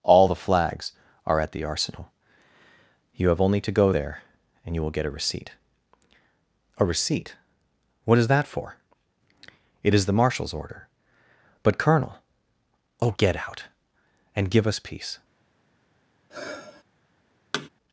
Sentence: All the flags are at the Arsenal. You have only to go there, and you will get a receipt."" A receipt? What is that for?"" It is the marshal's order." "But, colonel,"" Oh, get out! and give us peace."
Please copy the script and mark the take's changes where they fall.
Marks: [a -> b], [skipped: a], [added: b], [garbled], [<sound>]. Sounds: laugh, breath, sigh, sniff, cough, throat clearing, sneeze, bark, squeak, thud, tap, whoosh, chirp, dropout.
All the flags are at the Arsenal. You have only to go there, and you will get a receipt."" A receipt? What is that for?"" It is the marshal's order." "But, colonel,"" Oh, get out! and give us peace." [sigh] [thud]